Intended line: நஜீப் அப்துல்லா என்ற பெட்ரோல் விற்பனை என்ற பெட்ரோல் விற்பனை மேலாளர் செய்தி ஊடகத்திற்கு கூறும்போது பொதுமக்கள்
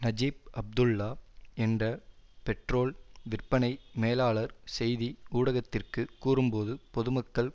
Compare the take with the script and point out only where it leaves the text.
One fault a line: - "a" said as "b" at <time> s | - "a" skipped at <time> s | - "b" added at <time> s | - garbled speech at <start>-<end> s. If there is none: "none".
- "என்ற பெட்ரோல் விற்பனை" skipped at 3.7 s